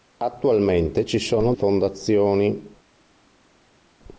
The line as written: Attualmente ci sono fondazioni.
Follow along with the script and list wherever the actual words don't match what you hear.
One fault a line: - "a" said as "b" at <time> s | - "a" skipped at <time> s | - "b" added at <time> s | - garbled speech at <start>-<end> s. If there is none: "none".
none